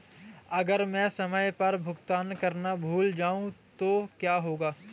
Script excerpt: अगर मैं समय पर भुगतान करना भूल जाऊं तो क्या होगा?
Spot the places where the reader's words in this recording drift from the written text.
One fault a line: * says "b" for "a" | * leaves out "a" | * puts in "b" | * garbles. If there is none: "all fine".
all fine